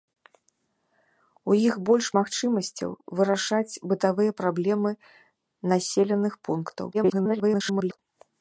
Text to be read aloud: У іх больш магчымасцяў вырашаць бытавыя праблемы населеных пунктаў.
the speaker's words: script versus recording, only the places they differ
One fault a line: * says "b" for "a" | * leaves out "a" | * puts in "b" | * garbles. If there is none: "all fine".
* garbles